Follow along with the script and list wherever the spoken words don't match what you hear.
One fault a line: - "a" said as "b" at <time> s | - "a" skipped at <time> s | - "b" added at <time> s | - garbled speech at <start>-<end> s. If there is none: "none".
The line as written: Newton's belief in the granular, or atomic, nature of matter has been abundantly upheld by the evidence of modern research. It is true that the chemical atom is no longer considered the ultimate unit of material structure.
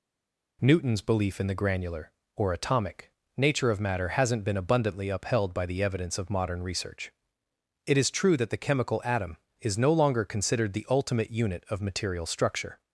- "has" said as "hasn't" at 4.1 s